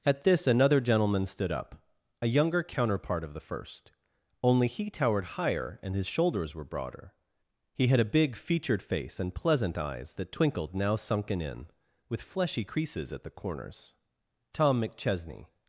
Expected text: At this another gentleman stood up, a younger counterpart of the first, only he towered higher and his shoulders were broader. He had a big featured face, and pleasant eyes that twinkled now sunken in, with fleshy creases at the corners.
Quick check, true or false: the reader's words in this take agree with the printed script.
false